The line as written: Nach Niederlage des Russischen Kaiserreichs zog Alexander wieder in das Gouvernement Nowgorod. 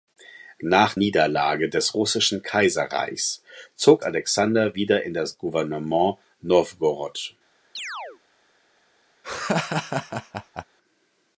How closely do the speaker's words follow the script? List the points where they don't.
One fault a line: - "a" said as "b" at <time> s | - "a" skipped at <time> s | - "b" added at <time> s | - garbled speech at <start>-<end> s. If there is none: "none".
none